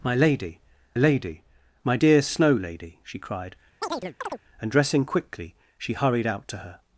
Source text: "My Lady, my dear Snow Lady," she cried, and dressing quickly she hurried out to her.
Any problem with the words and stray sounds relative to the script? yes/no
yes